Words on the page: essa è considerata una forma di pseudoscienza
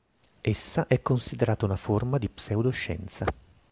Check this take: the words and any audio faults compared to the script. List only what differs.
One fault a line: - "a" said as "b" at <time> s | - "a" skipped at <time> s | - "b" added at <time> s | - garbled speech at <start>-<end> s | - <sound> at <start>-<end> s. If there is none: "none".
none